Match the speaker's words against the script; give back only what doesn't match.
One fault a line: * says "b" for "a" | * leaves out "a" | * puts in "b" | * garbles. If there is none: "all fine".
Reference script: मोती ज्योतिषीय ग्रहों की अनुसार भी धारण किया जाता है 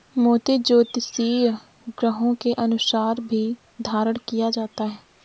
* says "के" for "की"